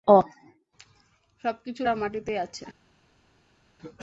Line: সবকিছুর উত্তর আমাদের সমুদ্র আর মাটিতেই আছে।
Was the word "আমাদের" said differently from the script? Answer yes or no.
yes